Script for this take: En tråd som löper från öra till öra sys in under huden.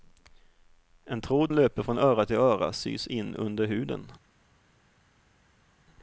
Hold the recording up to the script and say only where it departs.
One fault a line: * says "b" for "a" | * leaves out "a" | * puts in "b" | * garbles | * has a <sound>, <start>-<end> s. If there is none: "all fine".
* leaves out "som"